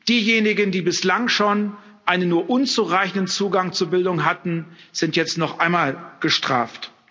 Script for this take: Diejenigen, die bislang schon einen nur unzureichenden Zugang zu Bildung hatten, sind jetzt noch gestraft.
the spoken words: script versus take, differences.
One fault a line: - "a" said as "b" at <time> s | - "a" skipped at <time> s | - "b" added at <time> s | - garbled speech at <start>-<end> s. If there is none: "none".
- "einmal" added at 5.6 s